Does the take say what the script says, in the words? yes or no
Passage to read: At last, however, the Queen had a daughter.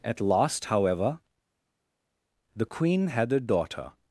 yes